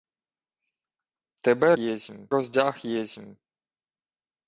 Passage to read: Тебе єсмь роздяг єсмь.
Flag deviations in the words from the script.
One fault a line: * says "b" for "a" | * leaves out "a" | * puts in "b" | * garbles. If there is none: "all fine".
all fine